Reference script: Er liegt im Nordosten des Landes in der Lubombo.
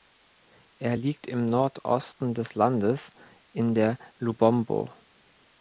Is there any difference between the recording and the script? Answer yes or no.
no